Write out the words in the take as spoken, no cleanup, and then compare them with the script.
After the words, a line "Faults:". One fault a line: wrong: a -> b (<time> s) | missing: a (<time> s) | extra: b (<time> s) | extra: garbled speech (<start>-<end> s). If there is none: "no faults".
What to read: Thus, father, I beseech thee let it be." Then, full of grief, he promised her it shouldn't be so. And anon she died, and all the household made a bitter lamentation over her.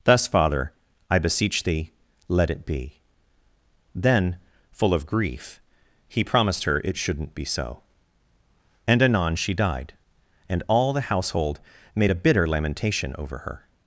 Thus, father, I beseech thee let it be." Then, full of grief, he promised her it shouldn't be so. And anon she died, and all the household made a bitter lamentation over her.
Faults:
no faults